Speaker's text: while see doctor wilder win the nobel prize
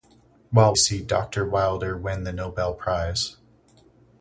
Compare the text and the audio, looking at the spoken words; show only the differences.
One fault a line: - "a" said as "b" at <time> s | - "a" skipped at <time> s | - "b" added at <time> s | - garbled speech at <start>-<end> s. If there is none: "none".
none